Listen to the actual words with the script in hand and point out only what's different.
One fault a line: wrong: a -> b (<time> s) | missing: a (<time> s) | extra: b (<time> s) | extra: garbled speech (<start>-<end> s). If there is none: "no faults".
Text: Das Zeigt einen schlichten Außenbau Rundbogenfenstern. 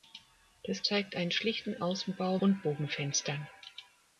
no faults